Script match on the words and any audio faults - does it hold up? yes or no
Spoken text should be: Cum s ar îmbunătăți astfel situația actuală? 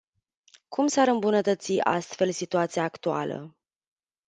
yes